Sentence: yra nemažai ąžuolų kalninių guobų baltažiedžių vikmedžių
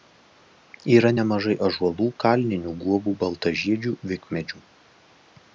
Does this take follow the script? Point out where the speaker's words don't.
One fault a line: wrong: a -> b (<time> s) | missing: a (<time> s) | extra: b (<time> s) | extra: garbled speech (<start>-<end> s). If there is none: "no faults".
no faults